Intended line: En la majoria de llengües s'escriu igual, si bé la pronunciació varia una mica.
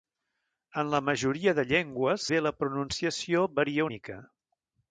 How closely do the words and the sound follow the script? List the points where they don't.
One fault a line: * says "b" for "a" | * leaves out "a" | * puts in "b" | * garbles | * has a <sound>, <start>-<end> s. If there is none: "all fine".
* leaves out "s'escriu igual si"
* leaves out "una"